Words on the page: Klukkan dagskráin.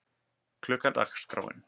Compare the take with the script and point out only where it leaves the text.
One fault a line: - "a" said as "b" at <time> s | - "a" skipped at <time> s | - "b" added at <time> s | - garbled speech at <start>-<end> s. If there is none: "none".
none